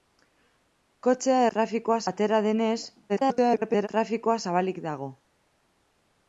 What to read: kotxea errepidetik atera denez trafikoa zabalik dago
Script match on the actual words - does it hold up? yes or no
no